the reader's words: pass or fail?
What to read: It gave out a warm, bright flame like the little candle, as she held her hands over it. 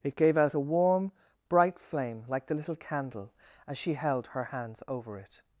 pass